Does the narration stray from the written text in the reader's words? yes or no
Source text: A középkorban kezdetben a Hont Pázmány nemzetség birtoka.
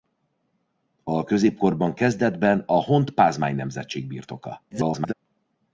yes